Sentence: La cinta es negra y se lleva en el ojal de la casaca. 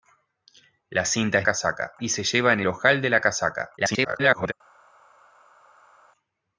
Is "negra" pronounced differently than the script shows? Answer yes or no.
yes